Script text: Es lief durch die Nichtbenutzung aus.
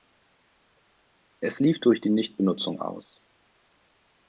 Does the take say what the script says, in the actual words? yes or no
yes